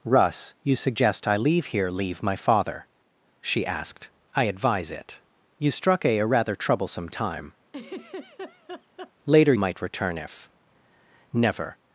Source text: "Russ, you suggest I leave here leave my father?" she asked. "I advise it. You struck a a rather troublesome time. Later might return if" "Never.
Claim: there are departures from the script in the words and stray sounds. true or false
true